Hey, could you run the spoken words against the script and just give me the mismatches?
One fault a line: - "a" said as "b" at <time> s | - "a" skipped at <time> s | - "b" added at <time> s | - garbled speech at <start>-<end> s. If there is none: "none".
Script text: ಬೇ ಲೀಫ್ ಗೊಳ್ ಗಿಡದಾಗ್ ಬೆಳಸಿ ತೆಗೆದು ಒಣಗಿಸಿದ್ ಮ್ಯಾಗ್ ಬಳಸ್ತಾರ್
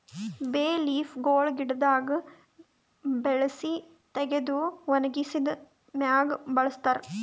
none